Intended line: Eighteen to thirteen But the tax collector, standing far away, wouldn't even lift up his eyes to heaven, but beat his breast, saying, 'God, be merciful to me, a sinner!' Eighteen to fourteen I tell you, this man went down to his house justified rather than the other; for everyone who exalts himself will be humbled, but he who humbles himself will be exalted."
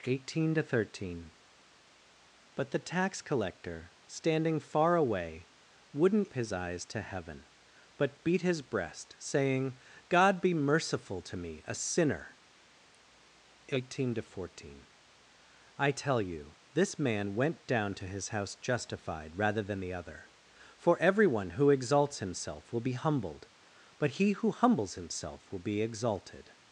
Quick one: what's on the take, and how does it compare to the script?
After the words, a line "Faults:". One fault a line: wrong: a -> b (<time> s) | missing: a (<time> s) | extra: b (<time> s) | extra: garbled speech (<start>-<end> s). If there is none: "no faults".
Eighteen to thirteen But the tax collector, standing far away, wouldn't his eyes to heaven, but beat his breast, saying, 'God, be merciful to me, a sinner!' Eighteen to fourteen I tell you, this man went down to his house justified rather than the other; for everyone who exalts himself will be humbled, but he who humbles himself will be exalted."
Faults:
missing: even lift up (6.3 s)